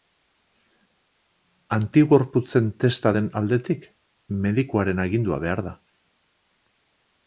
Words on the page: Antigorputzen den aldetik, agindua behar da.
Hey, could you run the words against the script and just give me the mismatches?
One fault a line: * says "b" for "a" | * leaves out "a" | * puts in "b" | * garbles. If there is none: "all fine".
* puts in "testa"
* puts in "medikuaren"